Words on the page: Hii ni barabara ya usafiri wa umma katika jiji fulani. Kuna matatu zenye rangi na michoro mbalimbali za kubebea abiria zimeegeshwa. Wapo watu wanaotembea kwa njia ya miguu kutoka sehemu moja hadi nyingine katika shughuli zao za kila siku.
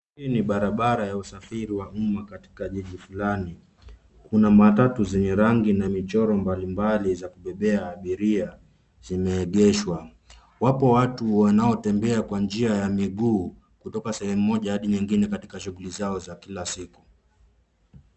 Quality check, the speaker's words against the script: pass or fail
pass